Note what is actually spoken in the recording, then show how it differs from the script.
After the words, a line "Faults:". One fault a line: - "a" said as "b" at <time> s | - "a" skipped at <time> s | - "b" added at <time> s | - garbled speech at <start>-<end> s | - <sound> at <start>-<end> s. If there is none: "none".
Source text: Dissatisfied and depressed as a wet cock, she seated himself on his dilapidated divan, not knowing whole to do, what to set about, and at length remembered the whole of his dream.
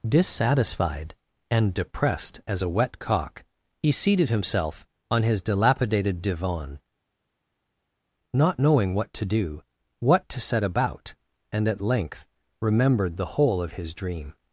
Dissatisfied and depressed as a wet cock, he seated himself on his dilapidated divan, not knowing what to do, what to set about, and at length remembered the whole of his dream.
Faults:
- "she" said as "he" at 3.8 s
- "whole" said as "what" at 8.9 s